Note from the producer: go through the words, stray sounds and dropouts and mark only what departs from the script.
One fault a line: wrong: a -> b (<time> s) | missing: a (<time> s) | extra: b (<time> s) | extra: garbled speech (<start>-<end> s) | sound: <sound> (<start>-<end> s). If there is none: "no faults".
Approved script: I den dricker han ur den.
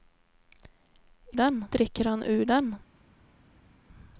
no faults